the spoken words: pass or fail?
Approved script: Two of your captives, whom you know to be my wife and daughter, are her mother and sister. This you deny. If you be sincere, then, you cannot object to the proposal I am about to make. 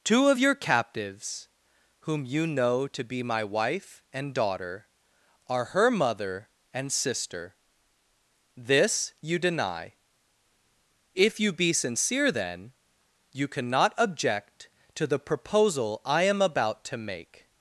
pass